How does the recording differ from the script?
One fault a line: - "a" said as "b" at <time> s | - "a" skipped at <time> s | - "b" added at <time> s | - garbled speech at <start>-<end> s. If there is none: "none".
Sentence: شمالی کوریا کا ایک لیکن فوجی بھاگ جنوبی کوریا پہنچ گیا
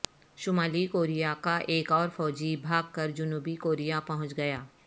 - "لیکن" said as "اور" at 1.9 s
- "کر" added at 2.9 s